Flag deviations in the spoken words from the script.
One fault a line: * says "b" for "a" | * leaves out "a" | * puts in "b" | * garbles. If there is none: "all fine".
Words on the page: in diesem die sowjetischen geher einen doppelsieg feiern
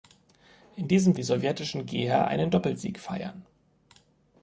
all fine